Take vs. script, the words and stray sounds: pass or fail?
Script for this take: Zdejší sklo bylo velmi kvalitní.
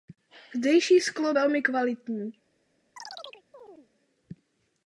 fail